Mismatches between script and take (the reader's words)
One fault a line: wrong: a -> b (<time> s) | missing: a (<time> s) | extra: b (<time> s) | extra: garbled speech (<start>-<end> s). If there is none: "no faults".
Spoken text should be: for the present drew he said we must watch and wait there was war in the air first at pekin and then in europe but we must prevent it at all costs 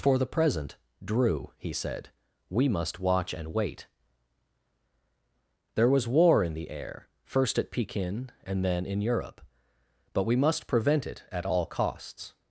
no faults